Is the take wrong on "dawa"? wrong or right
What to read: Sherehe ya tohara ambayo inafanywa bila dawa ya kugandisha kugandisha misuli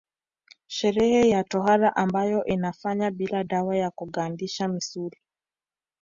right